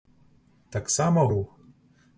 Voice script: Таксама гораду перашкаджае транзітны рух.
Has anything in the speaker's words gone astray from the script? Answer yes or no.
yes